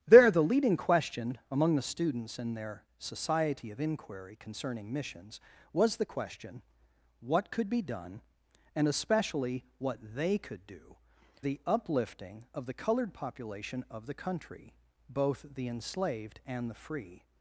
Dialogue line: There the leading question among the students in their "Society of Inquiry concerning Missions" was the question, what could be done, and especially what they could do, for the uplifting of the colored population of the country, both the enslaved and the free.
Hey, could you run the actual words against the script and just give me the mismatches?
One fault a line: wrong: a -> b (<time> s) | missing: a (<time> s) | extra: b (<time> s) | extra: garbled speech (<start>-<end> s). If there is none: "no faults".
missing: for (11.0 s)